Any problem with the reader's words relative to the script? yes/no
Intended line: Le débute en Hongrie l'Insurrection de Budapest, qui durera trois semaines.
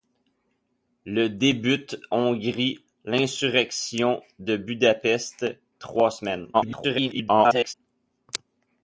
yes